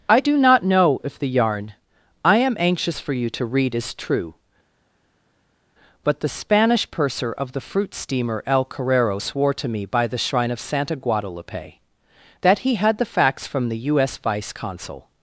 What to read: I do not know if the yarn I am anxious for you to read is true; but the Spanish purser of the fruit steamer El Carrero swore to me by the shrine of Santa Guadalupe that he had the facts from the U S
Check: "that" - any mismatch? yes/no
no